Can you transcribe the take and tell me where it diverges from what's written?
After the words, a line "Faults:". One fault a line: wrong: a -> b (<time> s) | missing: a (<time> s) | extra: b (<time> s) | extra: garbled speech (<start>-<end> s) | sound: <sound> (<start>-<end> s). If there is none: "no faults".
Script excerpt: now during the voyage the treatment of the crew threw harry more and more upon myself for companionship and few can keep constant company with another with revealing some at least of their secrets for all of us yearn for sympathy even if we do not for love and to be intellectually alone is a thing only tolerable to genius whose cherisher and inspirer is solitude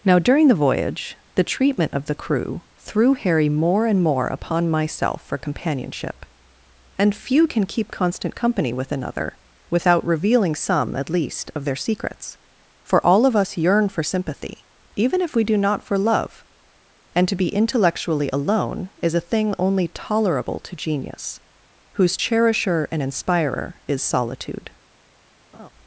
now during the voyage the treatment of the crew threw harry more and more upon myself for companionship and few can keep constant company with another without revealing some at least of their secrets for all of us yearn for sympathy even if we do not for love and to be intellectually alone is a thing only tolerable to genius whose cherisher and inspirer is solitude
Faults:
wrong: with -> without (9.7 s)
sound: laugh (25.5-25.7 s)